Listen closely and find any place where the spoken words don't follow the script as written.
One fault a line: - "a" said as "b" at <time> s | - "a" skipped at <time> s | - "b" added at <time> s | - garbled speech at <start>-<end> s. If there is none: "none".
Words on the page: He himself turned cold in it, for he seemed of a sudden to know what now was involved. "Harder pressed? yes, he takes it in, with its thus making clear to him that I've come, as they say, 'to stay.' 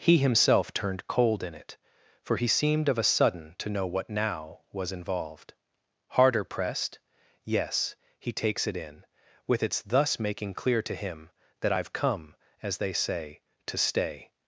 none